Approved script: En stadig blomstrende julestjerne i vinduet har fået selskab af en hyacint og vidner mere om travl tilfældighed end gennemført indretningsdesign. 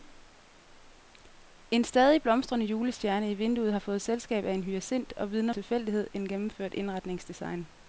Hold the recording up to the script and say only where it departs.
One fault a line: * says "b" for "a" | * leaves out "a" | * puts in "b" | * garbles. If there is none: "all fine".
* leaves out "mere om travl"